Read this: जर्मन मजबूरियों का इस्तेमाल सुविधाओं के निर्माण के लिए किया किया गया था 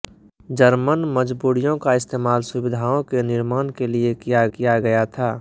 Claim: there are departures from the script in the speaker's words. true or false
false